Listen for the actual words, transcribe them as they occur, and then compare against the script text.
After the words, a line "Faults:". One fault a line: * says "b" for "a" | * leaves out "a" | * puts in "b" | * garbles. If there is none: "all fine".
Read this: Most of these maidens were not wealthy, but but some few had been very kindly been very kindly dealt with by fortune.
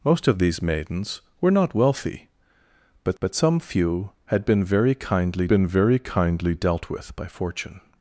Most of these maidens were not wealthy, but but some few had been very kindly been very kindly dealt with by fortune.
Faults:
all fine